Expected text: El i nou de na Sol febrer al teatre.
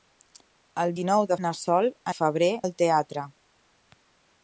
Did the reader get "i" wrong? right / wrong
right